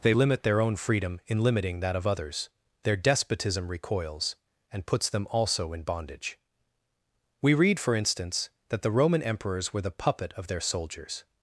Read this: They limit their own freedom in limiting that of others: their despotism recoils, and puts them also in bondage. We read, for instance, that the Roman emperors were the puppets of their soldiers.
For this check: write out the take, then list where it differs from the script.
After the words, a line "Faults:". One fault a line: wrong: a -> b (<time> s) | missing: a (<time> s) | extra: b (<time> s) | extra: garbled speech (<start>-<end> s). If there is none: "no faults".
They limit their own freedom in limiting that of others: their despotism recoils, and puts them also in bondage. We read, for instance, that the Roman emperors were the puppet of their soldiers.
Faults:
wrong: puppets -> puppet (9.9 s)